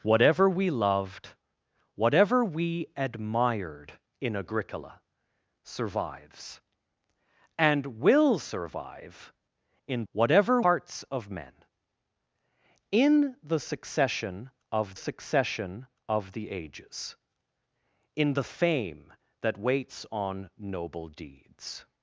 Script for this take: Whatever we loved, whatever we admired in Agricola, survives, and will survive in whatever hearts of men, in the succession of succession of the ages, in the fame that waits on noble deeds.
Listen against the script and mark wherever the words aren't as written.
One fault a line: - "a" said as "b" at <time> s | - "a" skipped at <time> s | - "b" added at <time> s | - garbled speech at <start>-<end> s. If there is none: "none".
none